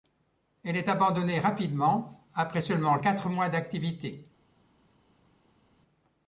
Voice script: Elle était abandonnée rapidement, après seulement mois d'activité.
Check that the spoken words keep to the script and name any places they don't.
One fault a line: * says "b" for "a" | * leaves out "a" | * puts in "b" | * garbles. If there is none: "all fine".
* says "est" for "était"
* puts in "quatre"